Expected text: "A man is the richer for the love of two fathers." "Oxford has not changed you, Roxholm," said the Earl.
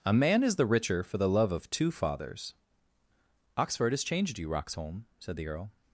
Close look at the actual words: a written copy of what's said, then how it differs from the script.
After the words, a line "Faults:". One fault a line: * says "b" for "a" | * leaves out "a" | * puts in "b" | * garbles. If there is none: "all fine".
"A man is the richer for the love of two fathers." "Oxford has changed you, Roxholm," said the Earl.
Faults:
* leaves out "not"